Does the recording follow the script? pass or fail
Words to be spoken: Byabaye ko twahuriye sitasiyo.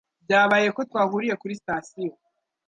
fail